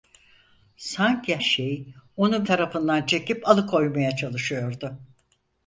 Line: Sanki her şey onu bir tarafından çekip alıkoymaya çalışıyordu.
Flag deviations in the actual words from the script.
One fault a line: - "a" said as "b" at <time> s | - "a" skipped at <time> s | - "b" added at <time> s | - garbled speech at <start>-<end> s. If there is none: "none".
- "her" skipped at 1.4 s
- "bir" skipped at 2.5 s